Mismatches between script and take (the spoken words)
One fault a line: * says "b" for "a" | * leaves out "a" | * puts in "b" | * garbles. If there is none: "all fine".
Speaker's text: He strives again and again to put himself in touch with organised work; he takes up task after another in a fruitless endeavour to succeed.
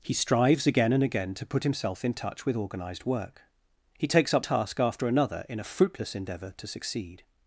all fine